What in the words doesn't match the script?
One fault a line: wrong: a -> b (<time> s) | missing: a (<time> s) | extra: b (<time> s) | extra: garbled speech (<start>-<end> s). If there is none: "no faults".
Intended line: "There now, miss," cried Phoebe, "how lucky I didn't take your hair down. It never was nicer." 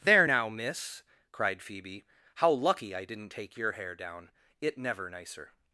missing: was (5.1 s)